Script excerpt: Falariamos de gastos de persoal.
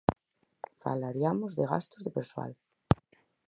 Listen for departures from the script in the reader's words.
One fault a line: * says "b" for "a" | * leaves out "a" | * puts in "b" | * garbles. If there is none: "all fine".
all fine